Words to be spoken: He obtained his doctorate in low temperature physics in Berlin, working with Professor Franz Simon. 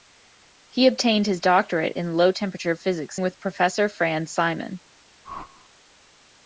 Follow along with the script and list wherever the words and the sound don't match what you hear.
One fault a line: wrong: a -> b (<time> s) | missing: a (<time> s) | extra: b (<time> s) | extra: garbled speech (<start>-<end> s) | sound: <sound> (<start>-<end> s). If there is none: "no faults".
missing: in Berlin working (3.2 s)
sound: whoosh (5.2-5.7 s)